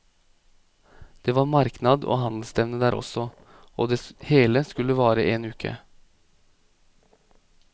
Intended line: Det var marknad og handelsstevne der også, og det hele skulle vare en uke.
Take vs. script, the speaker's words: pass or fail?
pass